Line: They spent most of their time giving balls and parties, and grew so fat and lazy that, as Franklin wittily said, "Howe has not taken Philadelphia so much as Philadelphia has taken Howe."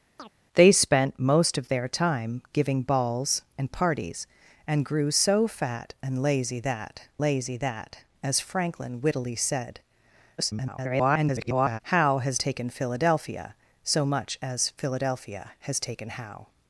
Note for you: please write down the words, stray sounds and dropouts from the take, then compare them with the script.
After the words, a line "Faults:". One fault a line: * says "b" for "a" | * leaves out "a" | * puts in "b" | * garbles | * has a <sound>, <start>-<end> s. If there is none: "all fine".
They spent most of their time giving balls and parties, and grew so fat and lazy that lazy that, as Franklin wittily said, [garbled] "Howe has taken Philadelphia so much as Philadelphia has taken Howe."
Faults:
* has a chirp, 0.2-0.3 s
* puts in "lazy that"
* garbles
* leaves out "not"